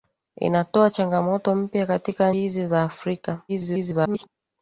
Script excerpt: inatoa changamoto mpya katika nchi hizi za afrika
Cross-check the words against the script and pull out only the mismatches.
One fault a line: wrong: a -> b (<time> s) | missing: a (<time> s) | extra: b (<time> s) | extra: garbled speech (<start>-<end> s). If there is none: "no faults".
missing: nchi (2.3 s)
extra: garbled speech (3.5-4.3 s)